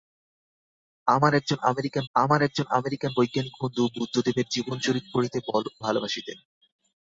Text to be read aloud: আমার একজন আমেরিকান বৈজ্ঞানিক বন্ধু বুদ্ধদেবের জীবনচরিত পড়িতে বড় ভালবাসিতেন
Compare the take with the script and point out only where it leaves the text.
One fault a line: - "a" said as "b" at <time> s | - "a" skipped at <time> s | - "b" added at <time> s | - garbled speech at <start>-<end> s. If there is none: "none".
- "আমার একজন আমেরিকান" added at 2.1 s
- "বড়" skipped at 5.4 s